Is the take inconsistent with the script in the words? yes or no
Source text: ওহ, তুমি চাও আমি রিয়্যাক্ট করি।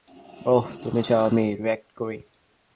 no